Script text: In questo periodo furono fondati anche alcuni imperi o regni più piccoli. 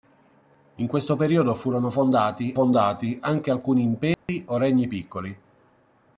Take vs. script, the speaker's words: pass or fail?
fail